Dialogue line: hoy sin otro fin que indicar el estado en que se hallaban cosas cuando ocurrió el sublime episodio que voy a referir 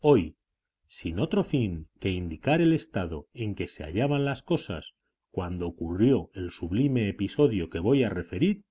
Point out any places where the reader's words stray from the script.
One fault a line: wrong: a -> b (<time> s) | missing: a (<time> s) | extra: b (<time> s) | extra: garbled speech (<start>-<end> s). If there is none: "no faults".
extra: las (4.3 s)